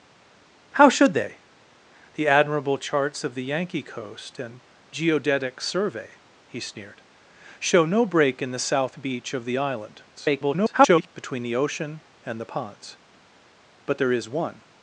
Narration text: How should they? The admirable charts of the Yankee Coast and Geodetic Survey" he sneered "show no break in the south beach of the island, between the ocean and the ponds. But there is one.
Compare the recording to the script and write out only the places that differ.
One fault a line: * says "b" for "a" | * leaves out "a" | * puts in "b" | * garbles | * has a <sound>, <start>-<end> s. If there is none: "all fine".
* garbles